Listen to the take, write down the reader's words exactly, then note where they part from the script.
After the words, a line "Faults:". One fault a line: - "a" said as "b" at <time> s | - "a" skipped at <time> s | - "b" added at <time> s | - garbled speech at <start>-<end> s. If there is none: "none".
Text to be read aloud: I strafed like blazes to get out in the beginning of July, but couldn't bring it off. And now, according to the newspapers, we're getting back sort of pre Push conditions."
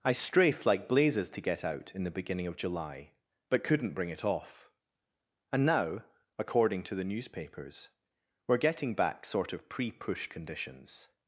I strafed like blazes to get out in the beginning of July, but couldn't bring it off. And now, according to the newspapers, we're getting back sort of pre Push conditions."
Faults:
none